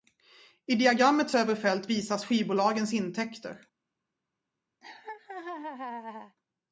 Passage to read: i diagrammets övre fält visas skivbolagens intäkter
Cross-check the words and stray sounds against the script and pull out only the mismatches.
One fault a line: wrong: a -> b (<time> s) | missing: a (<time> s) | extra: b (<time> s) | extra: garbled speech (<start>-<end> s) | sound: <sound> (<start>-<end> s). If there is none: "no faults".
sound: laugh (4.8-6.4 s)